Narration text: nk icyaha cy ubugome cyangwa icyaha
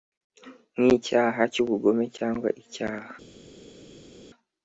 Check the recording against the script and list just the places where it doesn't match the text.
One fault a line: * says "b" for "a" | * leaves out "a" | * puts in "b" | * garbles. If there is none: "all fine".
all fine